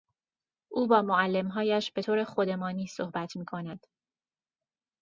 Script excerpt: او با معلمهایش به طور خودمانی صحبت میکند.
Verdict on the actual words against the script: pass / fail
pass